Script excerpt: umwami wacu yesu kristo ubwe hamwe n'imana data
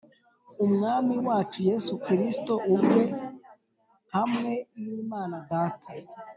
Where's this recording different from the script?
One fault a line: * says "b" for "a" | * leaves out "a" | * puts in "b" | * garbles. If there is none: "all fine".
all fine